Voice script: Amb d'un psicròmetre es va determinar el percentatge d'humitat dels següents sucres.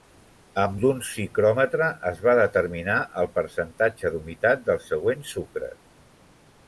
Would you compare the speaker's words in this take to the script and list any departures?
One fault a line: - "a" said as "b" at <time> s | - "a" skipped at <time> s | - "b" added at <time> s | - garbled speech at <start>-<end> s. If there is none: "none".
none